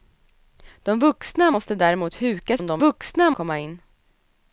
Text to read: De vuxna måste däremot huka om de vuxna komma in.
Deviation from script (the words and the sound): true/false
false